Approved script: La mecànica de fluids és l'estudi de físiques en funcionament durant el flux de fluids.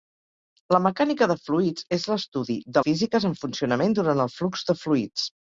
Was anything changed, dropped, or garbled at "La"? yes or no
no